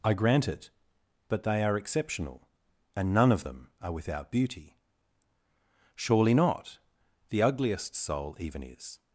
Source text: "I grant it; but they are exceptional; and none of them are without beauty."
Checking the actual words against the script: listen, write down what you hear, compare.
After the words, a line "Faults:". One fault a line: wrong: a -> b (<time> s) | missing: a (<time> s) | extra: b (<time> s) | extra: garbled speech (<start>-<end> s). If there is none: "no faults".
"I grant it; but they are exceptional; and none of them are without beauty." "Surely not. The ugliest soul even is
Faults:
extra: Surely not The ugliest soul even is (5.9 s)